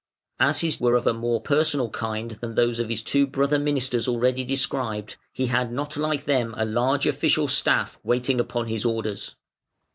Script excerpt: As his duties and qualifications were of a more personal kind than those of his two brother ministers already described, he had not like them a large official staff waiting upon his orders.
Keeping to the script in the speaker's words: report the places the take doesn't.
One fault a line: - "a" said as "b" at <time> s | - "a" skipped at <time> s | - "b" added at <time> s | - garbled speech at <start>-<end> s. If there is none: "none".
- "duties and qualifications" skipped at 0.8 s